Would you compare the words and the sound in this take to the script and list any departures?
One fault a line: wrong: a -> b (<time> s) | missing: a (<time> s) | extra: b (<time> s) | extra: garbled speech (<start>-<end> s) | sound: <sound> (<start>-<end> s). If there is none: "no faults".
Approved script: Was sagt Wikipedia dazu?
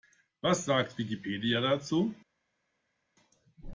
no faults